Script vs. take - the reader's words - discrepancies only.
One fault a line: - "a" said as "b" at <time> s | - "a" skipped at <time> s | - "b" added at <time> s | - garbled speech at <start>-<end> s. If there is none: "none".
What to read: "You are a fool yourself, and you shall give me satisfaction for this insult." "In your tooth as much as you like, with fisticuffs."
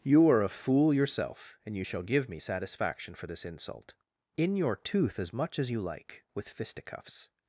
none